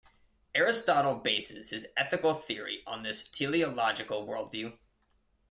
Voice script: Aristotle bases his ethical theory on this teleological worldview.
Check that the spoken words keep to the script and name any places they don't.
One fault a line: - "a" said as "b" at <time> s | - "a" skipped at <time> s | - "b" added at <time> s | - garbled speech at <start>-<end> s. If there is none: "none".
none